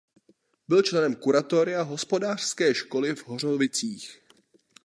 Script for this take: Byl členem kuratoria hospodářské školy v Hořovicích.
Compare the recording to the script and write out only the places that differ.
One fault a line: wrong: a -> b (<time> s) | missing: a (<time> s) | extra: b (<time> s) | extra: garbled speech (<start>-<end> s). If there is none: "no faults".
no faults